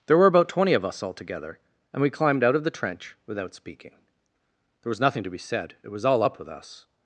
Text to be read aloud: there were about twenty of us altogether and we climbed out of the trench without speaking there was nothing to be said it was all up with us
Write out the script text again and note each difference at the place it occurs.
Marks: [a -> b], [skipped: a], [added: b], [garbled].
there were about twenty of us altogether and we climbed out of the trench without speaking there was nothing to be said it was all up with us